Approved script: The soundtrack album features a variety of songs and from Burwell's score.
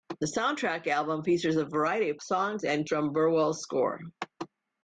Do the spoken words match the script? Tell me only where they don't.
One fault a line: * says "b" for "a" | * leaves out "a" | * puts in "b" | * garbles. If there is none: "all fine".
all fine